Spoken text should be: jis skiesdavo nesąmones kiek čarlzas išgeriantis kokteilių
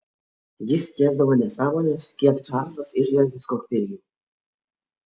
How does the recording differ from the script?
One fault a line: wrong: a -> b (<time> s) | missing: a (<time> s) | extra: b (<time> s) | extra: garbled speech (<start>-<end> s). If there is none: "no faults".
no faults